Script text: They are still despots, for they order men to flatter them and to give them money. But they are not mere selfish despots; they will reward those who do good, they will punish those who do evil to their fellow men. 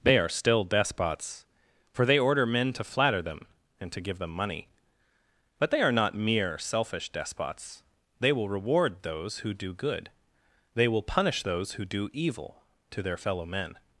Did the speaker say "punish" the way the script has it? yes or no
yes